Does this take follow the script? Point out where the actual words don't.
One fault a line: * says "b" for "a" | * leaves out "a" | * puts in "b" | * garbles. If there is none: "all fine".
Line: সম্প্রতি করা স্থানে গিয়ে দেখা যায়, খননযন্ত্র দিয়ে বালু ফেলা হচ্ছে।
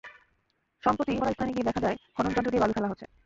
all fine